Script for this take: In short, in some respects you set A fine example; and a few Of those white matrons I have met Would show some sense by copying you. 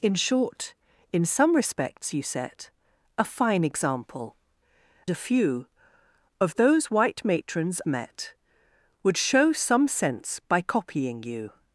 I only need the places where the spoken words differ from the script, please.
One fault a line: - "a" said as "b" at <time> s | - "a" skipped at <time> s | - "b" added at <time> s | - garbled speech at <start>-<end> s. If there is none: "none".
- "and" skipped at 4.3 s
- "I have" skipped at 7.8 s